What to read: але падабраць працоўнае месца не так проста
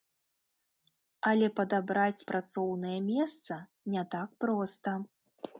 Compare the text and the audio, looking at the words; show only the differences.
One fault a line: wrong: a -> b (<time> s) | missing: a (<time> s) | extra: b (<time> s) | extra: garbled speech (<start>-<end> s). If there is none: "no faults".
no faults